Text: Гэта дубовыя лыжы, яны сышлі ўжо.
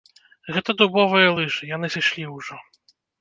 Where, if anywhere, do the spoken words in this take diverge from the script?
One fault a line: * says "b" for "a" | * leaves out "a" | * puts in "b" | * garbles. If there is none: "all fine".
all fine